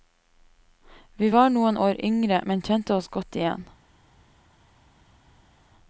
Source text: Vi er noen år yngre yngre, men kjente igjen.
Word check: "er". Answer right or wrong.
wrong